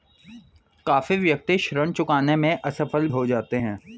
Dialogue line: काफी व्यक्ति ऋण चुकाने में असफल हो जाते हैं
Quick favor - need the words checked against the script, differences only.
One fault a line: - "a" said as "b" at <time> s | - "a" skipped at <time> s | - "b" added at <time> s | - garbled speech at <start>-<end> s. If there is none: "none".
none